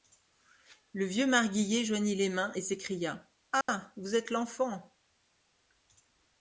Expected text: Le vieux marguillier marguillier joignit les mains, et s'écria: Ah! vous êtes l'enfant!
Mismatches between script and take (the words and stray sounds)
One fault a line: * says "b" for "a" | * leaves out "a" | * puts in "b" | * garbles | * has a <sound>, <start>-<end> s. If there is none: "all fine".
* leaves out "marguillier"
* has a dropout, 3.6-3.7 s